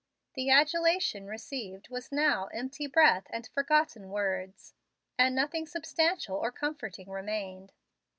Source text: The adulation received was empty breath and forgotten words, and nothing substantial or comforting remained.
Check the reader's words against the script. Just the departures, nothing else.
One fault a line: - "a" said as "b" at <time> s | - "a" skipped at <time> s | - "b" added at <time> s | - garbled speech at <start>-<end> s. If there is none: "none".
- "now" added at 2.1 s